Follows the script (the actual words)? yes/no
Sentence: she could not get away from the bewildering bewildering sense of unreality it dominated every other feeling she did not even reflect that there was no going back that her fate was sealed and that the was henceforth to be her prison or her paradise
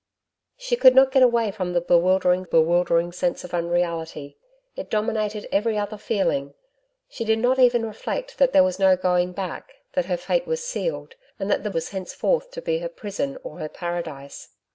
yes